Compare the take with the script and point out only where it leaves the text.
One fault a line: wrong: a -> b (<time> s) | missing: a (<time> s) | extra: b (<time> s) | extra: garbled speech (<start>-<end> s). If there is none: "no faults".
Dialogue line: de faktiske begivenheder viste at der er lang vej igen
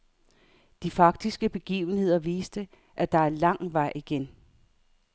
no faults